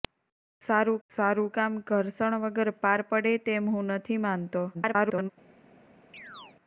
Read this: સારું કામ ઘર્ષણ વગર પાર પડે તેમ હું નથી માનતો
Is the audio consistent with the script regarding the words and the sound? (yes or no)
no